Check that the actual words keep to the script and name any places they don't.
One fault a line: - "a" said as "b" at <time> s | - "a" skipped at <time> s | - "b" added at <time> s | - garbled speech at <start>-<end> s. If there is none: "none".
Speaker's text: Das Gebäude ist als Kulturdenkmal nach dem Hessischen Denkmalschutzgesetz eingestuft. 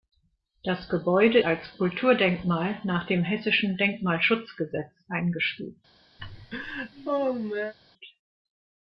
- "ist" skipped at 1.4 s